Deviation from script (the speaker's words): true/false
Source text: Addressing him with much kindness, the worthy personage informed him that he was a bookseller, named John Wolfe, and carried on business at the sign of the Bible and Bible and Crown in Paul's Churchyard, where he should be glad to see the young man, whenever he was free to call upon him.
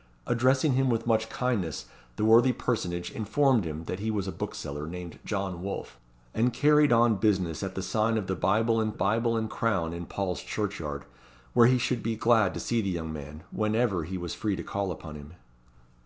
false